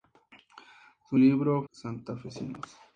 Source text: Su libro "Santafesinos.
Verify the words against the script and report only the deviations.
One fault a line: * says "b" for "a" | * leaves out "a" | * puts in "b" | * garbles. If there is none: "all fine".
all fine